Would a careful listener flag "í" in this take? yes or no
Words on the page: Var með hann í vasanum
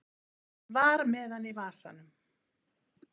no